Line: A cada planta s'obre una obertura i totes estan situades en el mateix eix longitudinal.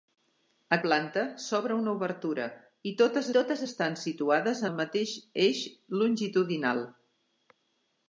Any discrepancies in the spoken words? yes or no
yes